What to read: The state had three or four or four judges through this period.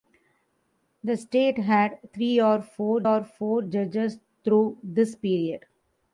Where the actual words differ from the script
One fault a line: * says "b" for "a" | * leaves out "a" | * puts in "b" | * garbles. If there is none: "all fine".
all fine